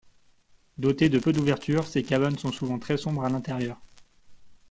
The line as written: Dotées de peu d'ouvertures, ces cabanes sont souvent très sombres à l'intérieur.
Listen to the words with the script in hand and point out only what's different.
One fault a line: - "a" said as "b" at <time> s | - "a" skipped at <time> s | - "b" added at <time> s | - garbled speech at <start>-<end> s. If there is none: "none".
none